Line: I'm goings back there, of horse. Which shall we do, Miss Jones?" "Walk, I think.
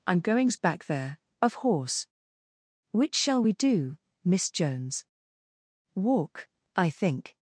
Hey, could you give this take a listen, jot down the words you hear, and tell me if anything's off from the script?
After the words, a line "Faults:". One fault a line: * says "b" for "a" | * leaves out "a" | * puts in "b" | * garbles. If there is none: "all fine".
I'm goings back there, of horse. Which shall we do, Miss Jones?" "Walk, I think.
Faults:
all fine